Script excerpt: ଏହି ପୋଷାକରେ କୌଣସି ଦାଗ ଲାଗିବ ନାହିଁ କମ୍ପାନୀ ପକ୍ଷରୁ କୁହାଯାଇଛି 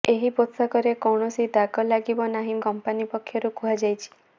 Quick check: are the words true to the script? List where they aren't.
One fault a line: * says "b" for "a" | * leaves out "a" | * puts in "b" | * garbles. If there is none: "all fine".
all fine